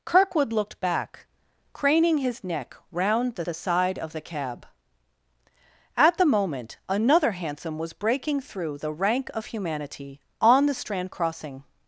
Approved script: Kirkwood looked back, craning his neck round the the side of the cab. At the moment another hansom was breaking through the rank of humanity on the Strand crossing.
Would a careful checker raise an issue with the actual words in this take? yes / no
no